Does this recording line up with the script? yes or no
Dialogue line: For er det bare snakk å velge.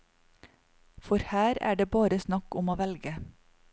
no